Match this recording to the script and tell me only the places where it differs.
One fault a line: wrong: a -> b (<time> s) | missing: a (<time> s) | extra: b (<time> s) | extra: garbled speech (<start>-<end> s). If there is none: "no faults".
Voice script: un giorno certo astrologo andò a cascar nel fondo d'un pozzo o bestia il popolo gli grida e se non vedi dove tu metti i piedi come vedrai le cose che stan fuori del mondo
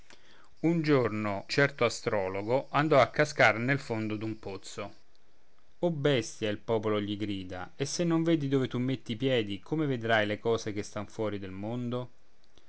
no faults